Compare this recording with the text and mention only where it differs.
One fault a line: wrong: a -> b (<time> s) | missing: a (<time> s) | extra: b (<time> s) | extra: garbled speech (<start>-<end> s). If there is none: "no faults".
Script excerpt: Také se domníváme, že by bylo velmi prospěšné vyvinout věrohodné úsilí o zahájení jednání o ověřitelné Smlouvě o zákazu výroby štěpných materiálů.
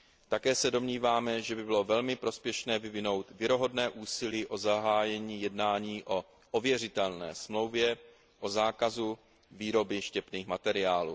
no faults